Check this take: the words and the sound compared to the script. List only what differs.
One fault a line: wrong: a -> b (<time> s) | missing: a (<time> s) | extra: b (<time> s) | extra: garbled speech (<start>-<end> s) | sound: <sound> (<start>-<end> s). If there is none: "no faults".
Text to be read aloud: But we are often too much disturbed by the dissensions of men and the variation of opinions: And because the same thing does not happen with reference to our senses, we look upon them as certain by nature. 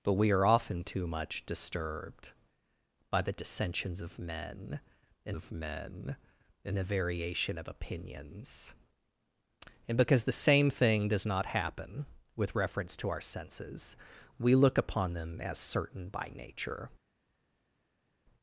extra: of men and (5.3 s)